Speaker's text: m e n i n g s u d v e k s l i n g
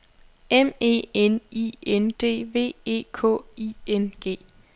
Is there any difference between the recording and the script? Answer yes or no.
yes